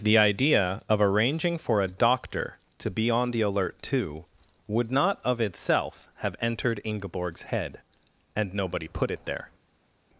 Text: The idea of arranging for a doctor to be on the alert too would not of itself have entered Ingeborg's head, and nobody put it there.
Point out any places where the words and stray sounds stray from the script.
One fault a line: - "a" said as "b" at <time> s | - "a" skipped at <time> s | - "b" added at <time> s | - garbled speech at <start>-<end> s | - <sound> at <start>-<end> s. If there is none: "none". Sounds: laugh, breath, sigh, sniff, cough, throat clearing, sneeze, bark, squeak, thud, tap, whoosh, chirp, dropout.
none